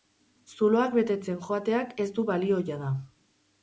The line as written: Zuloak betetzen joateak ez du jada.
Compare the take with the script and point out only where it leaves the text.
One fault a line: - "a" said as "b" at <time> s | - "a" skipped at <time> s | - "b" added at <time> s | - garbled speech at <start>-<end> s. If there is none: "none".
- "balio" added at 2.4 s